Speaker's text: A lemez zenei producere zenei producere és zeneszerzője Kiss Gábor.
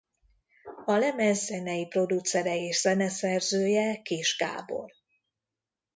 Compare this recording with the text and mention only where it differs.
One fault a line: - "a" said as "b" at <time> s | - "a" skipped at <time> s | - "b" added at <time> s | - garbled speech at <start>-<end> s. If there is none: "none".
- "zenei producere" skipped at 2.5 s